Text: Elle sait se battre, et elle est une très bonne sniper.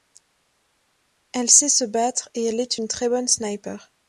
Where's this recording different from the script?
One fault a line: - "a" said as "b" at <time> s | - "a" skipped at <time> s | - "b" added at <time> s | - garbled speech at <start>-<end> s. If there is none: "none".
none